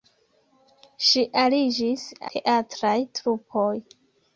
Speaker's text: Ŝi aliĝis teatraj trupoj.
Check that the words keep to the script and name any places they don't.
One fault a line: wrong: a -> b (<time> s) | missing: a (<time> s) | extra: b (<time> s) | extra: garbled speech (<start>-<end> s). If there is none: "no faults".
no faults